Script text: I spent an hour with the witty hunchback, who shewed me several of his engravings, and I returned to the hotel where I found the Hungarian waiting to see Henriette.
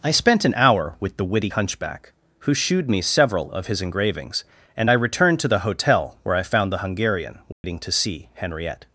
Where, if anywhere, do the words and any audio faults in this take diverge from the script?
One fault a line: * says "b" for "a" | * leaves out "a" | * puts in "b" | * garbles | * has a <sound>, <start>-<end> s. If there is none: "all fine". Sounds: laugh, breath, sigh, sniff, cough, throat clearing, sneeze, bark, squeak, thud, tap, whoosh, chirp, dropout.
* has a dropout, 7.5-7.6 s